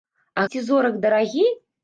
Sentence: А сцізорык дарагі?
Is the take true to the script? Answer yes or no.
yes